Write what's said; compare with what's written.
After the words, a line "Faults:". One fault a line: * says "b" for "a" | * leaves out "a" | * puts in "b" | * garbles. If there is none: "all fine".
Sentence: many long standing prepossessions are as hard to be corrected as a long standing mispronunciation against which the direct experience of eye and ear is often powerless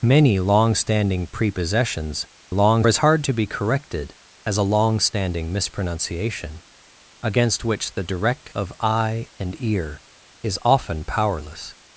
many long standing prepossessions long as hard to be corrected as a long standing mispronunciation against which the direct of eye and ear is often powerless
Faults:
* says "long" for "are"
* leaves out "experience"